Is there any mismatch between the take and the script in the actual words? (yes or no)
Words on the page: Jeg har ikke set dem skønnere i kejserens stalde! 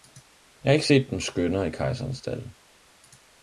no